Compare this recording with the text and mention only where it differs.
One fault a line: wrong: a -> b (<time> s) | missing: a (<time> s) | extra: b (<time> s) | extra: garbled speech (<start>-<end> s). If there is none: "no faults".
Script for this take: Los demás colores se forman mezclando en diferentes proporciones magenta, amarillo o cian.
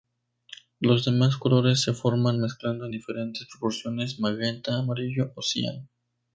no faults